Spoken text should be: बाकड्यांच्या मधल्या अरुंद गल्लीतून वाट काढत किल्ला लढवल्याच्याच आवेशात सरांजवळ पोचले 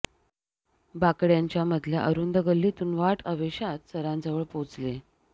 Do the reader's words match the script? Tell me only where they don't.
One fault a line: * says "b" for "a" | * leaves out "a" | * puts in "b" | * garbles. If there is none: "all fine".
* leaves out "काढत किल्ला लढवल्याच्याच"